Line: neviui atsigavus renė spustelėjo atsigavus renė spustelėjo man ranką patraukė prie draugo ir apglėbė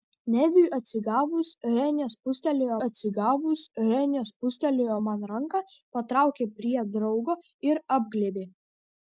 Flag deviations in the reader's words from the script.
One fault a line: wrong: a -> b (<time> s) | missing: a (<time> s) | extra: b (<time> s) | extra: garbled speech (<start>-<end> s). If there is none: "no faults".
no faults